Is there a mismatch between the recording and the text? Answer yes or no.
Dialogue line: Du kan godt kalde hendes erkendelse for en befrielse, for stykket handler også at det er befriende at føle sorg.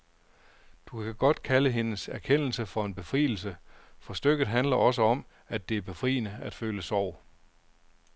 yes